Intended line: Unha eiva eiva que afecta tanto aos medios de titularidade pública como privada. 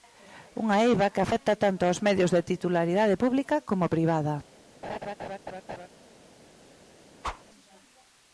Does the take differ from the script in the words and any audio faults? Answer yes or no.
yes